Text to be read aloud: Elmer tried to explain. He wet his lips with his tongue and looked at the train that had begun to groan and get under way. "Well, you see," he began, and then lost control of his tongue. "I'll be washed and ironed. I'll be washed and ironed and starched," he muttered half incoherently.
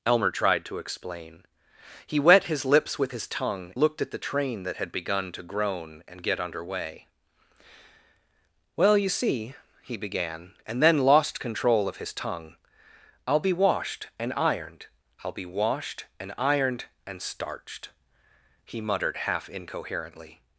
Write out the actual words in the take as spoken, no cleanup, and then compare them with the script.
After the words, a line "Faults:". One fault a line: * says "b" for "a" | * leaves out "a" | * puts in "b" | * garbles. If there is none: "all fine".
Elmer tried to explain. He wet his lips with his tongue looked at the train that had begun to groan and get under way. "Well, you see," he began, and then lost control of his tongue. "I'll be washed and ironed. I'll be washed and ironed and starched," he muttered half incoherently.
Faults:
* leaves out "and"